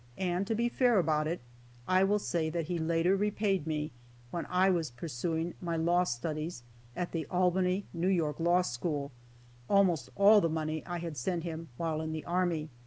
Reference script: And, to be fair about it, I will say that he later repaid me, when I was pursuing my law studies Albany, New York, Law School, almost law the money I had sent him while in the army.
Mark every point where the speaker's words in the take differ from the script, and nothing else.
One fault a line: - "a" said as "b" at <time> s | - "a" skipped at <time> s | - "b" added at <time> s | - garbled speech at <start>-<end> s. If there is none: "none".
- "at the" added at 7.0 s
- "law" said as "all" at 10.2 s